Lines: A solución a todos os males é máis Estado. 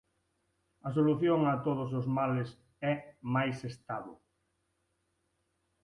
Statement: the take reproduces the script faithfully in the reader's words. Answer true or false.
true